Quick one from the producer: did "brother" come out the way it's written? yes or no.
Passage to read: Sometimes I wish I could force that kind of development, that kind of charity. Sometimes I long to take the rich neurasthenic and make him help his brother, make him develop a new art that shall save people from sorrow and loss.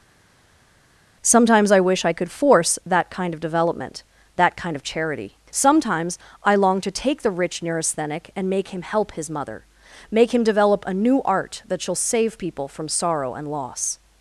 no